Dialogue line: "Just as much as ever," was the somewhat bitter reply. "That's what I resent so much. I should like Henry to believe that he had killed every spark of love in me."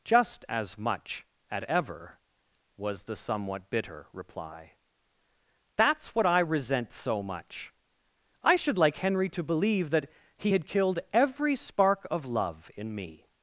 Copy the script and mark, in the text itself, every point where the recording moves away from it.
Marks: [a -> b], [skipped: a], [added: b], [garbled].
"Just as much [as -> at] ever," was the somewhat bitter reply. "That's what I resent so much. I should like Henry to believe that he had killed every spark of love in me."